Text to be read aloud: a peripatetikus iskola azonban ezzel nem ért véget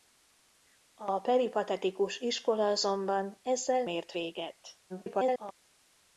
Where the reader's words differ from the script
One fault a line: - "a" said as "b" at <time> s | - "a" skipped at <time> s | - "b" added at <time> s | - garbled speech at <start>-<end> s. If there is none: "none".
- "nem" skipped at 3.9 s
- garbled speech at 4.9-5.5 s